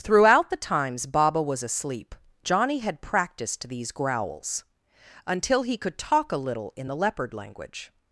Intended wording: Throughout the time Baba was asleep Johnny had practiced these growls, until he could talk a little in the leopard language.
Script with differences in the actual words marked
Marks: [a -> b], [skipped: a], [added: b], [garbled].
Throughout the [time -> times] Baba was asleep Johnny had practiced these growls, until he could talk a little in the leopard language.